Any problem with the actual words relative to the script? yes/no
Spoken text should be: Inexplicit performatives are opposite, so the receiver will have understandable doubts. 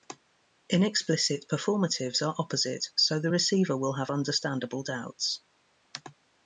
no